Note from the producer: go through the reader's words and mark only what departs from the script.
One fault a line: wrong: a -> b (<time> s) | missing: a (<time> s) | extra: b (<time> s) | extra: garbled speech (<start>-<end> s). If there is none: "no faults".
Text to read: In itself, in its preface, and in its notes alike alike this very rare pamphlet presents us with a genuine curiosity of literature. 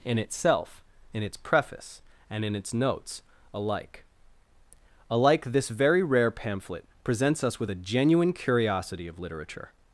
no faults